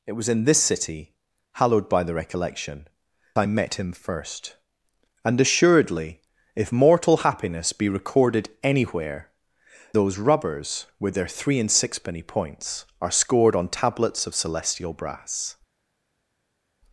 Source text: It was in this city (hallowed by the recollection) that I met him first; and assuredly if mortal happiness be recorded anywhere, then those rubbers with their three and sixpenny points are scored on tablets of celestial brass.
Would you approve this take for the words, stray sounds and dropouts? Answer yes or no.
no